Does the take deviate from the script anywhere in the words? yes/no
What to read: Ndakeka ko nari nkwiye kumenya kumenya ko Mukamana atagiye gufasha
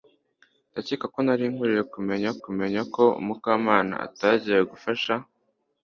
no